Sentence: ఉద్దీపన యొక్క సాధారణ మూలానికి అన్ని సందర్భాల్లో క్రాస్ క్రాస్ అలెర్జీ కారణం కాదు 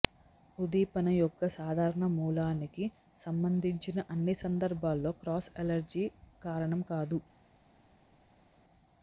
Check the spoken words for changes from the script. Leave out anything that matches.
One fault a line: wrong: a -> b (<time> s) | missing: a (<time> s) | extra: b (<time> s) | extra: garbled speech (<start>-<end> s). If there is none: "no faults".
extra: సంబంధించిన (3.2 s)
missing: క్రాస్ (5.5 s)